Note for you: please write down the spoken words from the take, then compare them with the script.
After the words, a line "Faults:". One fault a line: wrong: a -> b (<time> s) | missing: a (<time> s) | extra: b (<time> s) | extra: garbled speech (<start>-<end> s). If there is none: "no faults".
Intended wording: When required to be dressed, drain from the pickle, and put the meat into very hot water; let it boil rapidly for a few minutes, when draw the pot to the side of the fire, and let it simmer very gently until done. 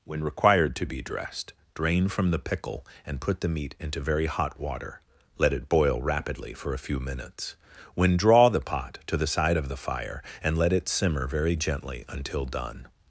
When required to be dressed, drain from the pickle, and put the meat into very hot water; let it boil rapidly for a few minutes, when draw the pot to the side of the fire, and let it simmer very gently until done.
Faults:
no faults